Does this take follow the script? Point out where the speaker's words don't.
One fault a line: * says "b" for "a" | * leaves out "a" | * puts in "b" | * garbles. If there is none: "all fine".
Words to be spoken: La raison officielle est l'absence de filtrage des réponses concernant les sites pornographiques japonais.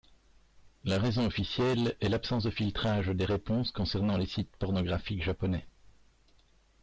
all fine